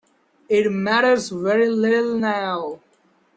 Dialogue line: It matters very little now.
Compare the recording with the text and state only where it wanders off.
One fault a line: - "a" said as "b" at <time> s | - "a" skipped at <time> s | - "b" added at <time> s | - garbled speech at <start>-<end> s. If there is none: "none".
none